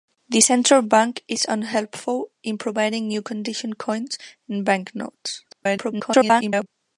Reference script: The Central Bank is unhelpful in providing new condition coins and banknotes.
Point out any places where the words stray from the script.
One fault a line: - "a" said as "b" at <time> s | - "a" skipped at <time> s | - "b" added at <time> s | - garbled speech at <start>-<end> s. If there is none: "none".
- garbled speech at 5.5-6.7 s